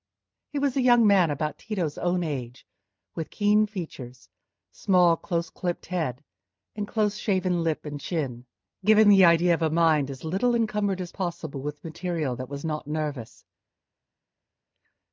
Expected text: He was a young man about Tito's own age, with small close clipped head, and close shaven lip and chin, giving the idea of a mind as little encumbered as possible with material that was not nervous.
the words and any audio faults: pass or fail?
fail